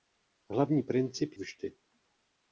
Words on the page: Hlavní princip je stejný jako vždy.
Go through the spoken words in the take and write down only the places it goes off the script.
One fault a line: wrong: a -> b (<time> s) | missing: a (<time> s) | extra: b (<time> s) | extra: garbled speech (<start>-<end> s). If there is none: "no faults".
missing: je stejný jako (1.3 s)